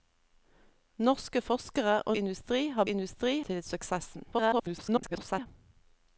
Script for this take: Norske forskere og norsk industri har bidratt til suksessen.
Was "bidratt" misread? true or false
true